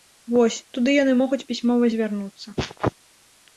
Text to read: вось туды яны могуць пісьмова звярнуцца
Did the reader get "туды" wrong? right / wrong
right